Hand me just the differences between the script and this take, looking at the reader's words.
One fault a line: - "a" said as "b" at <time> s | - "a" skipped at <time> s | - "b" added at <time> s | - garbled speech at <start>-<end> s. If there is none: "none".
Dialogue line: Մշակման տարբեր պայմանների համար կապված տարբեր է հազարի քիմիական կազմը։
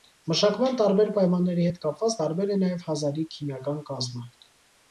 - "համար" said as "հետ" at 1.7 s
- "նաև" added at 2.7 s